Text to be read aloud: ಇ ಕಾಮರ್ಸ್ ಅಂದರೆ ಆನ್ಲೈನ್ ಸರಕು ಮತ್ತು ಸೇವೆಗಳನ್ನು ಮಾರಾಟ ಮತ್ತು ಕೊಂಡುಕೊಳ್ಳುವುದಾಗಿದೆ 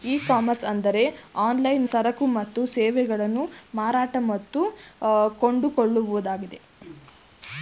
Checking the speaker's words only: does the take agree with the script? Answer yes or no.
yes